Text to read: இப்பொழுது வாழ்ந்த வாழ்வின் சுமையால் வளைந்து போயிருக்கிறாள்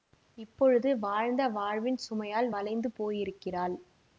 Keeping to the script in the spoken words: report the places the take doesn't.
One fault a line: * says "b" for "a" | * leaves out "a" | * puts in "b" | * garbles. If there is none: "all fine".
all fine